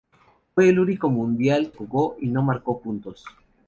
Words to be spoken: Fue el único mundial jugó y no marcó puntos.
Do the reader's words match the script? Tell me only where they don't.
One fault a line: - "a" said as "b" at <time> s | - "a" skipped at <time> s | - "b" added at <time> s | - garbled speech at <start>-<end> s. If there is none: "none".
none